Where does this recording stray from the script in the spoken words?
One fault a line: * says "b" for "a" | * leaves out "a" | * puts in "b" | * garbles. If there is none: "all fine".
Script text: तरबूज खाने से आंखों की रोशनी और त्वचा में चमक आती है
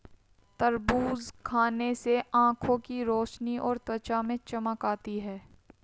all fine